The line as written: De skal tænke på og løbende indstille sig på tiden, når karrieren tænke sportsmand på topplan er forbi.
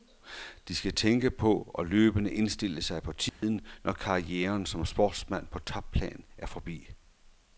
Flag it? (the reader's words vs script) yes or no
yes